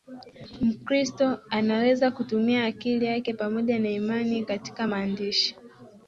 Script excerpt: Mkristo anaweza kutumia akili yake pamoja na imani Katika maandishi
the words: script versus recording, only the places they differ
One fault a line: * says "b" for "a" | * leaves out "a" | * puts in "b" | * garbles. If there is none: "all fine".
all fine